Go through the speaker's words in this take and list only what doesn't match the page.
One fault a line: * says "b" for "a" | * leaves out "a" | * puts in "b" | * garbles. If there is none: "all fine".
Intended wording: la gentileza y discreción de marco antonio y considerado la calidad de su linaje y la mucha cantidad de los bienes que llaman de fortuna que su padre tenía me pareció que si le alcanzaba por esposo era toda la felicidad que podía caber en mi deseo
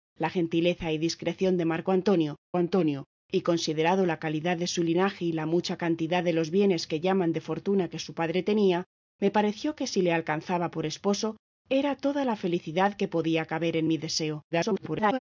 * puts in "antonio"
* garbles